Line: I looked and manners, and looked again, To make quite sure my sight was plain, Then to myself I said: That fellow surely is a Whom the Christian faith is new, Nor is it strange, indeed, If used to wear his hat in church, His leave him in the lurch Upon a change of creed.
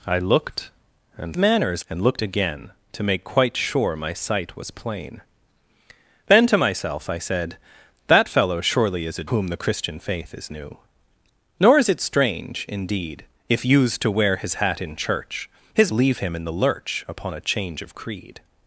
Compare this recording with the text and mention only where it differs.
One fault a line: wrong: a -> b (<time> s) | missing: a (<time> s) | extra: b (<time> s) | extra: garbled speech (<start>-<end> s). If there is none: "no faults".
no faults